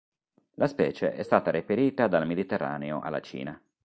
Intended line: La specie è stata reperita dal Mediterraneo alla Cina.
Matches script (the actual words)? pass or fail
pass